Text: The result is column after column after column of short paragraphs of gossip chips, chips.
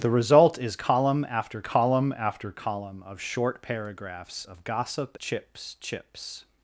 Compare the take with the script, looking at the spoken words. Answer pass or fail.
pass